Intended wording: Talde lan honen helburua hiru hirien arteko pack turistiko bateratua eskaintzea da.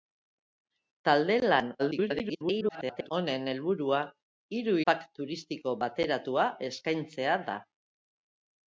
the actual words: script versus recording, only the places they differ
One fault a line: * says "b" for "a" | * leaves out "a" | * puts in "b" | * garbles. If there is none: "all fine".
* garbles
* leaves out "hirien arteko"